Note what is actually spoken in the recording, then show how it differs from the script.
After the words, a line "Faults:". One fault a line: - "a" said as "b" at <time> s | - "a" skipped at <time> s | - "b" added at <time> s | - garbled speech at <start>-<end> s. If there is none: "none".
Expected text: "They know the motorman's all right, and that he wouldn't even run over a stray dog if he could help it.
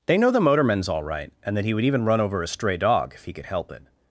"They know the motorman's all right, and that he would even run over a stray dog if he could help it.
Faults:
- "wouldn't" said as "would" at 1.7 s